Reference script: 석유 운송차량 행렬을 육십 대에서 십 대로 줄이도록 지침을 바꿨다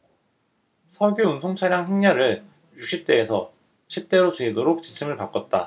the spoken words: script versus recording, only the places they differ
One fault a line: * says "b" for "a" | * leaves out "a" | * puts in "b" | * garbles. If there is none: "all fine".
all fine